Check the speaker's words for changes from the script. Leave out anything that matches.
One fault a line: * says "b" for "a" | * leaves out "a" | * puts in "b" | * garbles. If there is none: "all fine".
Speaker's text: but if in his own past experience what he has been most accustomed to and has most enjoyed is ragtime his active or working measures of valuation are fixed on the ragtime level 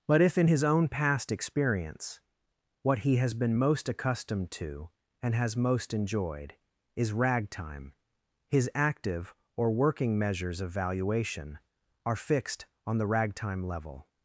all fine